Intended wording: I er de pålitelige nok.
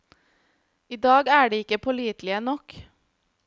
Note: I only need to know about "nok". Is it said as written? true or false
true